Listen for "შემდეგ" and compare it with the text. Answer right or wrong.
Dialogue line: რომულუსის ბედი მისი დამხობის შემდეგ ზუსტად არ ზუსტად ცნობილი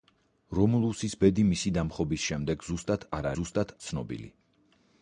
right